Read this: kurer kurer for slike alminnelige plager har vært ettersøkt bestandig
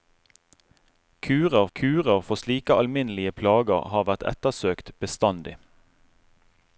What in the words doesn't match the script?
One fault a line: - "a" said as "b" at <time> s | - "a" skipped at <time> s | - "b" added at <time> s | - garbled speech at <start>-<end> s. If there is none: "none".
none